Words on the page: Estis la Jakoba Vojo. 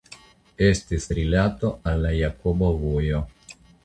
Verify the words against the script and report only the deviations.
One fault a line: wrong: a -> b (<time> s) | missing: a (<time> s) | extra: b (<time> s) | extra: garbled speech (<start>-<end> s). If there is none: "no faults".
extra: rilato al (1.2 s)